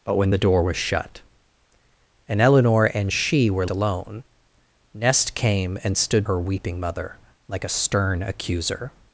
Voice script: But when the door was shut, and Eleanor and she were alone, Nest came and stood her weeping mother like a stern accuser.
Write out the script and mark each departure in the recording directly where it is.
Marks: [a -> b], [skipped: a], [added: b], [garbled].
But when the door was shut, and Eleanor and she were alone, Nest came and stood her weeping mother like a stern accuser.